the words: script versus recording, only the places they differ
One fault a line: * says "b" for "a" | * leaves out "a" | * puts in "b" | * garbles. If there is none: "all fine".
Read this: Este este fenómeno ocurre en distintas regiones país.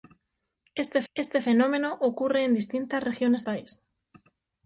all fine